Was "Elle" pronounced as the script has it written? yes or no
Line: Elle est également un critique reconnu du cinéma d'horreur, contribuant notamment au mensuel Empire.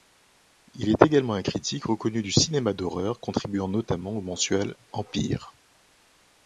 no